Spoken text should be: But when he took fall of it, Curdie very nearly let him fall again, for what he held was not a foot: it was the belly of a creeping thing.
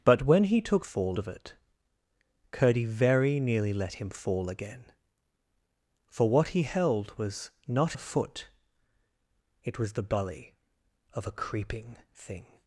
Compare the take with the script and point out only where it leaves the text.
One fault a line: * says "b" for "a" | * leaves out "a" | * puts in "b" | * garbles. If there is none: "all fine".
all fine